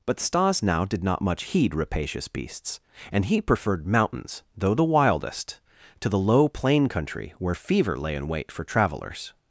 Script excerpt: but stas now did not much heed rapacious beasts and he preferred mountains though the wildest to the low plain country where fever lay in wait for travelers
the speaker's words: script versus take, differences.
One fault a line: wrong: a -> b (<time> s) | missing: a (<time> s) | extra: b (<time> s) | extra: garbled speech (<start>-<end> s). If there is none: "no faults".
no faults